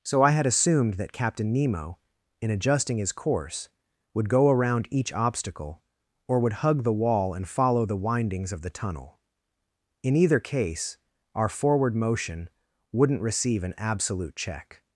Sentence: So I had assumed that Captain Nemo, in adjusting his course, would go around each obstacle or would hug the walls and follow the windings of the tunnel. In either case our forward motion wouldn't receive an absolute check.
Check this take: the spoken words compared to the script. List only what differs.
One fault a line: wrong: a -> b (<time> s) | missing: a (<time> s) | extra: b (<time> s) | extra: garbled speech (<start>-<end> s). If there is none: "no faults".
wrong: walls -> wall (6.9 s)